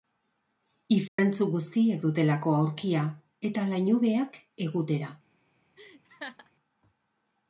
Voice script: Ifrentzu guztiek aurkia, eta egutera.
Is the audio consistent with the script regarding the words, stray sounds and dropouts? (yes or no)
no